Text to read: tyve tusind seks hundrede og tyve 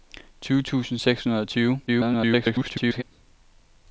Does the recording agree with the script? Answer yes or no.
no